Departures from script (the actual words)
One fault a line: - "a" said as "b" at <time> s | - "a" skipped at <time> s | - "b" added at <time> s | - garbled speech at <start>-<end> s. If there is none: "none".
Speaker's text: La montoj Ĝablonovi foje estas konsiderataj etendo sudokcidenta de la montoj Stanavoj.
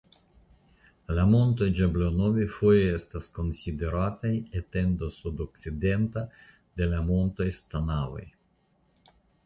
none